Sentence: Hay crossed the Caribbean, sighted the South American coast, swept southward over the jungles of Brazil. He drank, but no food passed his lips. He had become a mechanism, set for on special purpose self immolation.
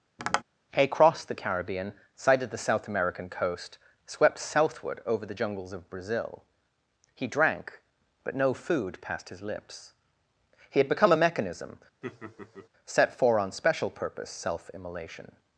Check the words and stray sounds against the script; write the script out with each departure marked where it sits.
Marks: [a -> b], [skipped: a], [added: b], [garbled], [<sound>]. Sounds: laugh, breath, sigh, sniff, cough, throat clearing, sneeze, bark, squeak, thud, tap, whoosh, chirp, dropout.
[tap] Hay crossed the Caribbean, sighted the South American coast, swept southward over the jungles of Brazil. He drank, but no food passed his lips. He had become a mechanism, [laugh] set for on special purpose self immolation.